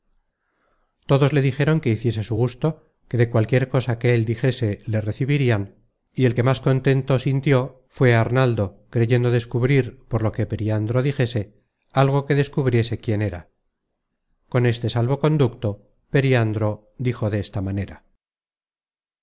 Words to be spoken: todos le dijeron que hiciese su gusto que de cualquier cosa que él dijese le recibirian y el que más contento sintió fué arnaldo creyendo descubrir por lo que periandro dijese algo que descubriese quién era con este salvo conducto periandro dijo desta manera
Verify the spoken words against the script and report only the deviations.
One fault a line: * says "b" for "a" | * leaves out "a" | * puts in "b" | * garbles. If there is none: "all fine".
all fine